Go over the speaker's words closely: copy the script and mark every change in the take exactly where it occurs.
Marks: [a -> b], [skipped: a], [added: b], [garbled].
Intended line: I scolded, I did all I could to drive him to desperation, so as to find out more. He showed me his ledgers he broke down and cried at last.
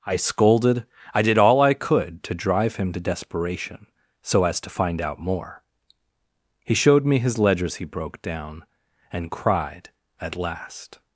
I scolded, I did all I could to drive him to desperation, so as to find out more. He showed me his ledgers he broke down and cried at last.